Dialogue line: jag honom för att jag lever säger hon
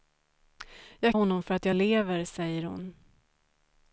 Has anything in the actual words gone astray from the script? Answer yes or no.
no